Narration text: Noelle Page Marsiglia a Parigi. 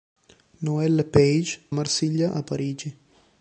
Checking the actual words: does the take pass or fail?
pass